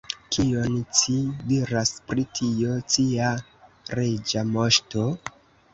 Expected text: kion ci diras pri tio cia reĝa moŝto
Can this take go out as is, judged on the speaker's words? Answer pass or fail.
pass